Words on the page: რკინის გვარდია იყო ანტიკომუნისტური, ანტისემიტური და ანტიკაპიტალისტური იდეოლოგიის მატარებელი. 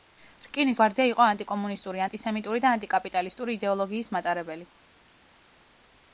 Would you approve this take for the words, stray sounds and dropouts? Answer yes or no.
yes